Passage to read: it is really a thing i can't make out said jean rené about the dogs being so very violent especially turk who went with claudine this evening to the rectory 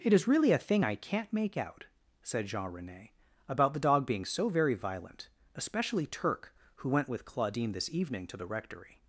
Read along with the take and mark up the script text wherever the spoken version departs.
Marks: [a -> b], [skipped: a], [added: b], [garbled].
it is really a thing i can't make out said jean rené about the [dogs -> dog] being so very violent especially turk who went with claudine this evening to the rectory